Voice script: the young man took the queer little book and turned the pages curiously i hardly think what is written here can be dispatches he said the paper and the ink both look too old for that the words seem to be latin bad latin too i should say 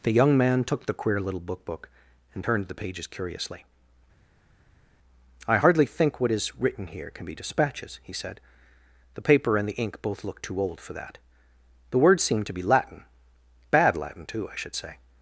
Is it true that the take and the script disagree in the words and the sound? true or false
true